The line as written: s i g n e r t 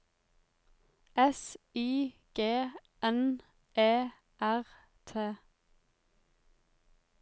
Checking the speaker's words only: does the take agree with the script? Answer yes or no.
yes